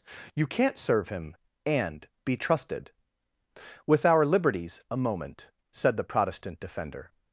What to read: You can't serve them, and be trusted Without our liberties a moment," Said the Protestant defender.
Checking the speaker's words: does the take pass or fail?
fail